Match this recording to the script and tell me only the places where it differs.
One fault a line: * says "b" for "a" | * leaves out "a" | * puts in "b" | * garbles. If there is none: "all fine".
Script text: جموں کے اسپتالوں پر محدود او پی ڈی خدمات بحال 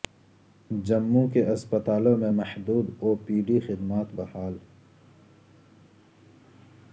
* says "میں" for "پر"